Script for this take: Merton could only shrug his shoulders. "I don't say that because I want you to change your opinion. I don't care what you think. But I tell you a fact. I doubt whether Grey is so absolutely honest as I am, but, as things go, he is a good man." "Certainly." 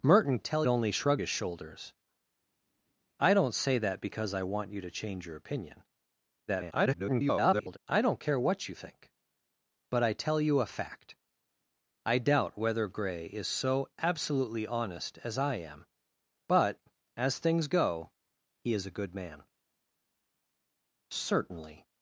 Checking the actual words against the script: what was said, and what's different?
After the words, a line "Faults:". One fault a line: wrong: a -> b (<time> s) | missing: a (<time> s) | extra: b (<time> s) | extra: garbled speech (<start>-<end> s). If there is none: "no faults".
Merton tell only shrug his shoulders. "I don't say that because I want you to change your opinion. [garbled] I don't care what you think. But I tell you a fact. I doubt whether Grey is so absolutely honest as I am, but, as things go, he is a good man." "Certainly."
Faults:
wrong: could -> tell (0.4 s)
extra: garbled speech (6.5-7.8 s)